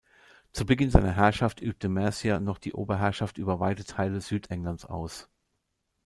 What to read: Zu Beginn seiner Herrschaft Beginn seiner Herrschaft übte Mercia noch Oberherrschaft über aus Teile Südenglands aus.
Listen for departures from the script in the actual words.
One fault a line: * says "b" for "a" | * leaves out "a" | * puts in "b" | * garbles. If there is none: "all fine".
* leaves out "Beginn seiner Herrschaft"
* puts in "die"
* says "weite" for "aus"